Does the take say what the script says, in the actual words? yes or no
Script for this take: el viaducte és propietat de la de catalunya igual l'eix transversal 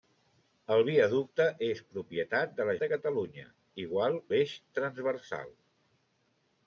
yes